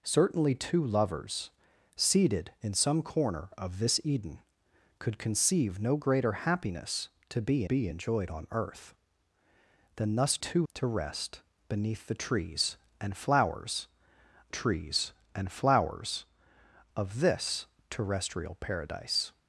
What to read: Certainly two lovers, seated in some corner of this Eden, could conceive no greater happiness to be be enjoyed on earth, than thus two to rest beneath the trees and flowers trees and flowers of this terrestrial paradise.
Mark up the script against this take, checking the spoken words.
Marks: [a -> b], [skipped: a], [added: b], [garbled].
Certainly two lovers, seated in some corner of this Eden, could conceive no greater happiness to be be enjoyed on earth, than thus two to rest beneath the trees and flowers trees and flowers of this terrestrial paradise.